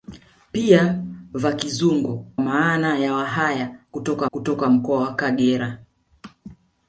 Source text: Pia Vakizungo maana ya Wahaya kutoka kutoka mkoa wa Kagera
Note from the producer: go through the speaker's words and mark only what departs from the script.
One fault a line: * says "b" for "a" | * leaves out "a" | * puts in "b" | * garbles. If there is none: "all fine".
all fine